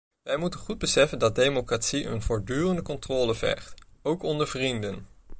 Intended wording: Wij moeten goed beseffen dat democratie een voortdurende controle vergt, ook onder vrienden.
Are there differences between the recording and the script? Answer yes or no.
no